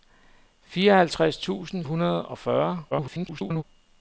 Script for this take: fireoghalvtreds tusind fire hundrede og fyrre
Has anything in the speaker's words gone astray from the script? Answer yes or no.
yes